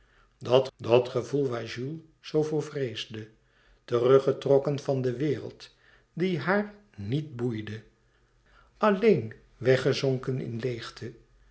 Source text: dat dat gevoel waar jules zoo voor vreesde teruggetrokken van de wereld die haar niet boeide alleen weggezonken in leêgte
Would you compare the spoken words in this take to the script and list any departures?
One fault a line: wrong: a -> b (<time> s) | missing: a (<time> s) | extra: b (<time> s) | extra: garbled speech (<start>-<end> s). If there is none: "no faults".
no faults